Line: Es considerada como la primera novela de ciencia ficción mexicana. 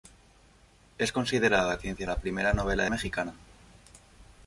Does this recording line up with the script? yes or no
no